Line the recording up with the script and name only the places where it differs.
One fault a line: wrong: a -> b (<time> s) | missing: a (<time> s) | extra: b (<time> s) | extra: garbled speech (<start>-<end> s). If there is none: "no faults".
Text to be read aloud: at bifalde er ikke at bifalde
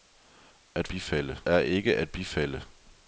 no faults